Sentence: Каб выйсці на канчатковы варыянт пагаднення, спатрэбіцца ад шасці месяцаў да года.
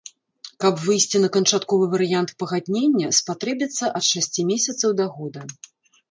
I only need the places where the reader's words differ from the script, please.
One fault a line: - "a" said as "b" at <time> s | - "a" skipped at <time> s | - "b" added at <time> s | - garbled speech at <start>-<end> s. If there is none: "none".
none